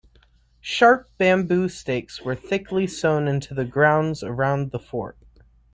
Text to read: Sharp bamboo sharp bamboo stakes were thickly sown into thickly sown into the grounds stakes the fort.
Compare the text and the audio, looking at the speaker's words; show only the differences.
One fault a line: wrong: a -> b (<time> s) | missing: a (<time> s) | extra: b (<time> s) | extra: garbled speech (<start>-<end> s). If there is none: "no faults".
missing: sharp bamboo (1.7 s)
missing: thickly sown into (3.5 s)
wrong: stakes -> around (4.2 s)